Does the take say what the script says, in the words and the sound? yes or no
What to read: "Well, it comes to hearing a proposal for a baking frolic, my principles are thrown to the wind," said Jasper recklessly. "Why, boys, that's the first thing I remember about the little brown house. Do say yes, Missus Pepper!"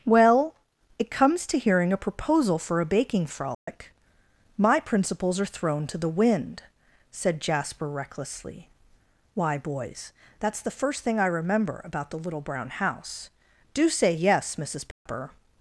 no